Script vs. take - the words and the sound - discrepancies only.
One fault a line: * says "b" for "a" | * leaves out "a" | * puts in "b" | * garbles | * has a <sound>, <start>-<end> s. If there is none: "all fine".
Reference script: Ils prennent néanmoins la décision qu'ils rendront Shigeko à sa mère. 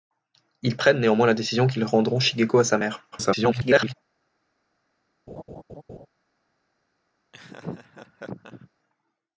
* garbles
* has a laugh, 5.3-6.1 s
* has a laugh, 7.3-8.7 s